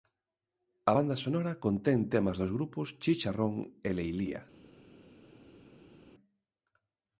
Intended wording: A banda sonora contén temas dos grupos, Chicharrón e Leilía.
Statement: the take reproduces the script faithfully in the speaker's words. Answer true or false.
true